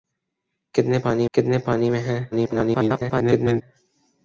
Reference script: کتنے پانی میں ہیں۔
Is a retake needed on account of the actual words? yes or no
yes